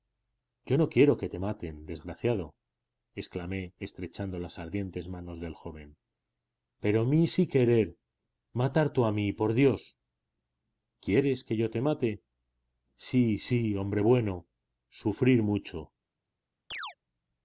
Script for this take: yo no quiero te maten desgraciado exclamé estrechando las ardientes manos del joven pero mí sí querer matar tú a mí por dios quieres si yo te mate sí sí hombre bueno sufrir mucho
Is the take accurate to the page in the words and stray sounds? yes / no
no